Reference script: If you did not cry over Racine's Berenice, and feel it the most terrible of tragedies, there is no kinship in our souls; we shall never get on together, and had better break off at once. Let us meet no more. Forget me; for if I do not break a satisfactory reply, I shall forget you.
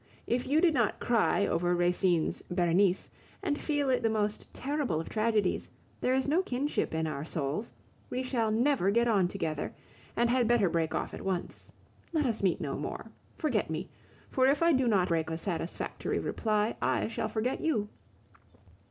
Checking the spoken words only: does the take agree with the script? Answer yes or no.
yes